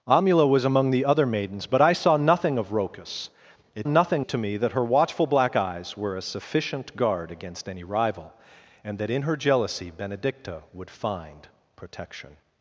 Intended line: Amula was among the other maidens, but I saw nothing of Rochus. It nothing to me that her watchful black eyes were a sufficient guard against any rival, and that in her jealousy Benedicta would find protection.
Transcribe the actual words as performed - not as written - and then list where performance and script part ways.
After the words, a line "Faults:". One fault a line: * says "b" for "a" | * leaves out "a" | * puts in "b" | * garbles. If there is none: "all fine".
Amula was among the other maidens, but I saw nothing of Rochus. It nothing to me that her watchful black eyes were a sufficient guard against any rival, and that in her jealousy Benedicta would find protection.
Faults:
all fine